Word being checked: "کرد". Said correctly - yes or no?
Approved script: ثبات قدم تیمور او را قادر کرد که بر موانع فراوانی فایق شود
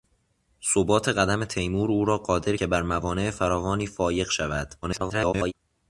no